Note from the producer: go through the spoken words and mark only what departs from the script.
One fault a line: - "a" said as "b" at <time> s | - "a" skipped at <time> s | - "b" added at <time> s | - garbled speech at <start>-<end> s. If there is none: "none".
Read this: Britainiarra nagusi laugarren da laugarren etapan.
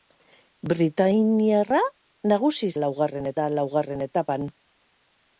none